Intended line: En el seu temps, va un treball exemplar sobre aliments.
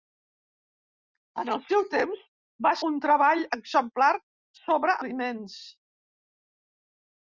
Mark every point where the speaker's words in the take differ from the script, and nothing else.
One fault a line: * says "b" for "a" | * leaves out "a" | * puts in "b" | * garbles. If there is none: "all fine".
all fine